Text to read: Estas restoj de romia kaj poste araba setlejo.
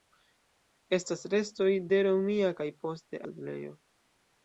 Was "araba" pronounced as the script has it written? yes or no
no